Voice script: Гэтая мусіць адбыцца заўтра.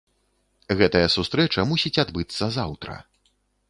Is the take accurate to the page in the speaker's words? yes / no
no